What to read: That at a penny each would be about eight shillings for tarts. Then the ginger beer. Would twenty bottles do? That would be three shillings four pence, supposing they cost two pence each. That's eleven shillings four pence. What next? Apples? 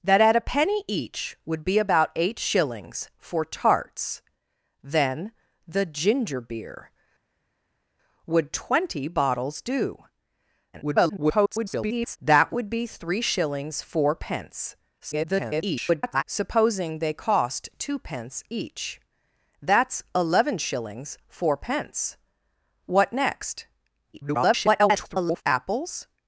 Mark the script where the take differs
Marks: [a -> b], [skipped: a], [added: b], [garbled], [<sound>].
That at a penny each would be about eight shillings for tarts. Then the ginger beer. Would twenty bottles do? [garbled] That would be three shillings four pence, [garbled] supposing they cost two pence each. That's eleven shillings four pence. What next? [garbled] Apples?